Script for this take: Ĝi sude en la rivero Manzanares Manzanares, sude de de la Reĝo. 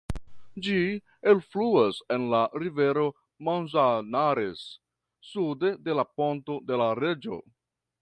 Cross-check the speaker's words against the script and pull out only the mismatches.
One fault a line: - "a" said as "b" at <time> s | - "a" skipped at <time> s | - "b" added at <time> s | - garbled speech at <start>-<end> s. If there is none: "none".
- "sude" said as "elfluas" at 1.3 s
- "Manzanares" skipped at 4.7 s
- "la Ponto" added at 6.0 s